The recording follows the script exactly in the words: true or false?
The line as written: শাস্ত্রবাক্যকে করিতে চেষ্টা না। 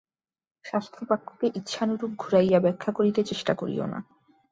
false